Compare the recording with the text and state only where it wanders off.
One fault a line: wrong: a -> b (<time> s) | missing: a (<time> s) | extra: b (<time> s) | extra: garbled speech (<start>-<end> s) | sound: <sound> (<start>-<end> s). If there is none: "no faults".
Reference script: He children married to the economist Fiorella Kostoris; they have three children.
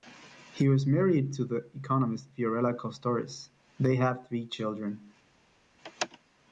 wrong: children -> was (0.7 s)